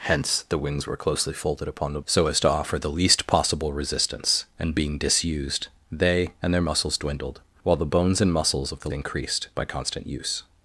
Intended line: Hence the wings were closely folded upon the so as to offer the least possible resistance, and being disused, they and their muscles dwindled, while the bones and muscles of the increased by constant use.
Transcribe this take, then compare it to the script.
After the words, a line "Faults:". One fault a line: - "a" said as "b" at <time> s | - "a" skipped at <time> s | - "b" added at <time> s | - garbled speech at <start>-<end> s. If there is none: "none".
Hence the wings were closely folded upon the so as to offer the least possible resistance, and being disused, they and their muscles dwindled, while the bones and muscles of the increased by constant use.
Faults:
none